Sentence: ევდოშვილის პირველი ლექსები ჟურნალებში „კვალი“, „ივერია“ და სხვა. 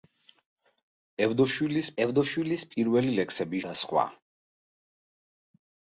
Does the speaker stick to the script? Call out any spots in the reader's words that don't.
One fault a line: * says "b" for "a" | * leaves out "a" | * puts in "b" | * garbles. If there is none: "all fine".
* puts in "ევდოშვილის"
* leaves out "ჟურნალებში კვალი ივერია"